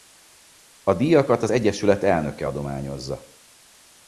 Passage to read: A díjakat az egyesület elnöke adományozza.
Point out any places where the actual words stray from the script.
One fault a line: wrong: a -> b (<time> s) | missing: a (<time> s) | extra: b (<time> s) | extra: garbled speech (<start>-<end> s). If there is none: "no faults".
no faults